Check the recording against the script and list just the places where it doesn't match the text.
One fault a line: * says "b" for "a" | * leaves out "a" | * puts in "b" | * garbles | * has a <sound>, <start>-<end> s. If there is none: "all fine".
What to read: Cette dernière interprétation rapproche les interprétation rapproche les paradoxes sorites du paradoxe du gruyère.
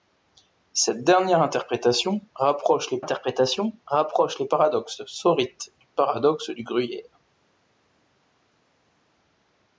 all fine